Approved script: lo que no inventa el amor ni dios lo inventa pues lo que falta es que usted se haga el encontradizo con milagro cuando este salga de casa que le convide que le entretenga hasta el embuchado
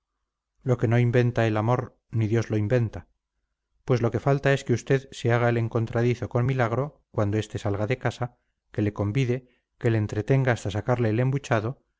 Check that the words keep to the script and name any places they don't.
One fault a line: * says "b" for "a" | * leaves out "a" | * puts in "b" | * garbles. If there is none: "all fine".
* puts in "sacarle"